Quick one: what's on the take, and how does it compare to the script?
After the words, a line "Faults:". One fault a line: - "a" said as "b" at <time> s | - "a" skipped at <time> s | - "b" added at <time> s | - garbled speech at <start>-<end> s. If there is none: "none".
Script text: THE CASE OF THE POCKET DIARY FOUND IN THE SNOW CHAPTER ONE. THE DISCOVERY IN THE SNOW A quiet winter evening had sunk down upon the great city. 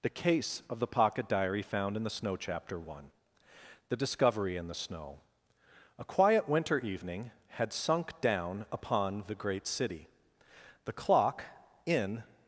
THE CASE OF THE POCKET DIARY FOUND IN THE SNOW CHAPTER ONE. THE DISCOVERY IN THE SNOW A quiet winter evening had sunk down upon the great city. The clock in
Faults:
- "The clock in" added at 10.9 s